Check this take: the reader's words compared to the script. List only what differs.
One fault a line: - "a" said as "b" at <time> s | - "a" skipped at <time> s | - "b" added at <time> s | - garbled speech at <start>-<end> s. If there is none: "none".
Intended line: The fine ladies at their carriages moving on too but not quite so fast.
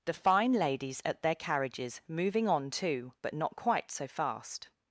none